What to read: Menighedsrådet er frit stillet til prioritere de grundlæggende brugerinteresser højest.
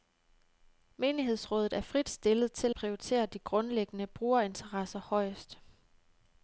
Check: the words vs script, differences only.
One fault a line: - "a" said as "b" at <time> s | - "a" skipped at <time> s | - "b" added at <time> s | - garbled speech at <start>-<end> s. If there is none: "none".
none